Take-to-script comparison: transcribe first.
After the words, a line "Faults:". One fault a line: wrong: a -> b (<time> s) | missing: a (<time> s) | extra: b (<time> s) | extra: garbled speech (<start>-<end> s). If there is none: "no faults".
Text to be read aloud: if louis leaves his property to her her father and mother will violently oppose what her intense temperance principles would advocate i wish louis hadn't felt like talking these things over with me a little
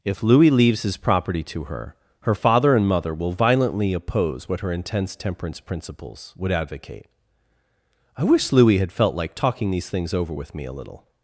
if louis leaves his property to her her father and mother will violently oppose what her intense temperance principles would advocate i wish louis had felt like talking these things over with me a little
Faults:
wrong: hadn't -> had (8.8 s)